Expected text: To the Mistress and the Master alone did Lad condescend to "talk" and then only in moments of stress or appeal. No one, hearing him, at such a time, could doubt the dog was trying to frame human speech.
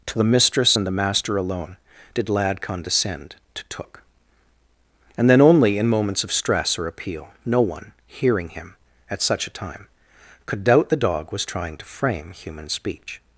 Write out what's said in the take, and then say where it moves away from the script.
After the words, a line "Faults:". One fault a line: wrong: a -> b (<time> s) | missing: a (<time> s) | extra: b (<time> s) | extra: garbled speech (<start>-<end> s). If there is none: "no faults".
To the Mistress and the Master alone did Lad condescend to "took" and then only in moments of stress or appeal. No one, hearing him, at such a time, could doubt the dog was trying to frame human speech.
Faults:
wrong: talk -> took (3.7 s)